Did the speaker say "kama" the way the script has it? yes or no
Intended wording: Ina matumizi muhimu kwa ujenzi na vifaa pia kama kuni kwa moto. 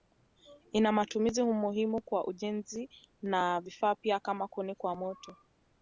yes